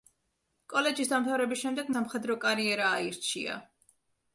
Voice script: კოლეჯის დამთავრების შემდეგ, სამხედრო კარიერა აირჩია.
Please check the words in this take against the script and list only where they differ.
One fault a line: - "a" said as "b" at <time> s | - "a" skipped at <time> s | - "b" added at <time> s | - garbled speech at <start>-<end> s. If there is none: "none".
none